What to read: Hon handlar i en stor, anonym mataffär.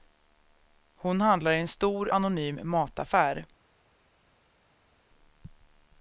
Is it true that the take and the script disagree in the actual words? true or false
false